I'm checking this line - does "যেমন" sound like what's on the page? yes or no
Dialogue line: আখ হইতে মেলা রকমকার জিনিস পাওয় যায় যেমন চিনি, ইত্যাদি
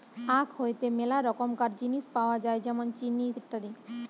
yes